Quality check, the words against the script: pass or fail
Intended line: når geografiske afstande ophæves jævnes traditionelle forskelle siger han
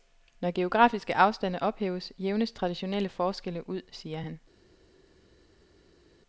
fail